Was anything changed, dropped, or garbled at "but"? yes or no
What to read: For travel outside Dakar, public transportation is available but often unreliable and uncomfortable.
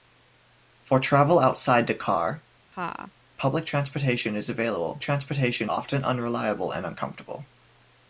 yes